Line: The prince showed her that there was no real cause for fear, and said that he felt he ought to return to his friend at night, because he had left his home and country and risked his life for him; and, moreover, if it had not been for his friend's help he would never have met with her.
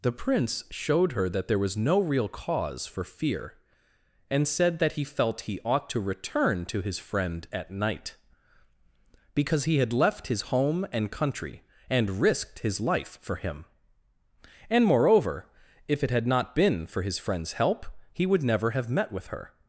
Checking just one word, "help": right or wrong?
right